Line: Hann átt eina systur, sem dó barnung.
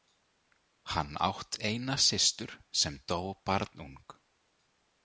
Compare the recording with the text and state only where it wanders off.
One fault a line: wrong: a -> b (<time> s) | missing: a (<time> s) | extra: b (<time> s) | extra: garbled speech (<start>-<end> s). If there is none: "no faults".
no faults